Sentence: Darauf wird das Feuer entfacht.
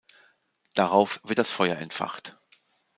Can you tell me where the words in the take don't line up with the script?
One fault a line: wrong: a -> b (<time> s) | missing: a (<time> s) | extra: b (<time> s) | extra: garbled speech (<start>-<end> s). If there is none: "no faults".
no faults